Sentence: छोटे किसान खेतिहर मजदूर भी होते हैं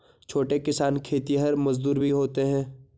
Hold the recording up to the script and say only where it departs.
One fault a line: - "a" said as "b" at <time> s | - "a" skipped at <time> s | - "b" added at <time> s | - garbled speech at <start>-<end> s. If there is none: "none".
none